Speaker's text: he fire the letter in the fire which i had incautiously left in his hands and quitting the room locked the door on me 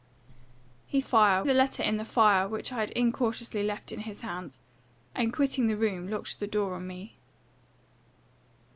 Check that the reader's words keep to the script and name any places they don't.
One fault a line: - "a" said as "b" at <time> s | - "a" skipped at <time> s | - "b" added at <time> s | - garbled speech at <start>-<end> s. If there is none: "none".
none